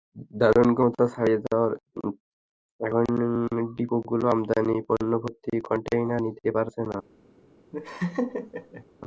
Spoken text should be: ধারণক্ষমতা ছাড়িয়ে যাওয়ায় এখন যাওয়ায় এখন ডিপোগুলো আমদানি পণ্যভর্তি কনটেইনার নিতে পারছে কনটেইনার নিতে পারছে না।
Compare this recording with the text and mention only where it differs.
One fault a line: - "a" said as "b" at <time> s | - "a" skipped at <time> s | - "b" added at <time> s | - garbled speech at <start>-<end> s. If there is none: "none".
- "যাওয়ায় এখন" skipped at 3.0 s
- "কনটেইনার নিতে পারছে" skipped at 6.8 s